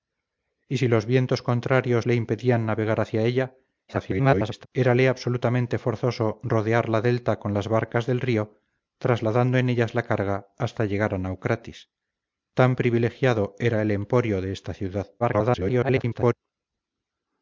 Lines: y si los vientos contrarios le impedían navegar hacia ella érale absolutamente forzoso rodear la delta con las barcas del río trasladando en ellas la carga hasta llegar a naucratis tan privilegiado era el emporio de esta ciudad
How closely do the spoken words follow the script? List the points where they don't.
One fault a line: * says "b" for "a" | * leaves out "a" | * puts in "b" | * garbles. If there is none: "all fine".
* garbles
* garbles